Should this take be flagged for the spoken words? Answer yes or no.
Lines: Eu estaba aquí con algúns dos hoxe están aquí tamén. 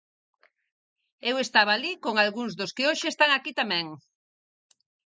yes